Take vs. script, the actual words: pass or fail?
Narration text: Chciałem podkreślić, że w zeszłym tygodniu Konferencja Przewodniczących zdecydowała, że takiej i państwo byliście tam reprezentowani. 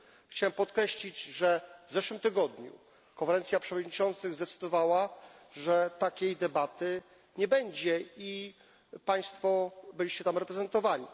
fail